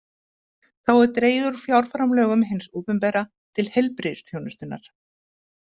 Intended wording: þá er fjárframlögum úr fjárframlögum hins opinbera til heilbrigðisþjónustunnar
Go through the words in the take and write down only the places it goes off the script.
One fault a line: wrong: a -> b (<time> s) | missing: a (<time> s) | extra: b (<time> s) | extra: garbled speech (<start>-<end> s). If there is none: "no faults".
wrong: fjárframlögum -> dregið (1.2 s)